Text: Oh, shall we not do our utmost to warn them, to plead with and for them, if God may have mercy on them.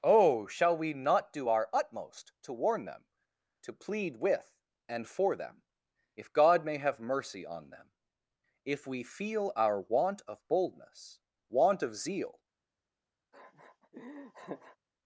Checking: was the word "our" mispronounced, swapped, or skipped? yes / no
no